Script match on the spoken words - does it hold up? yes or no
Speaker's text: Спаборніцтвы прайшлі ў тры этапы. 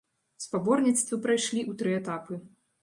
yes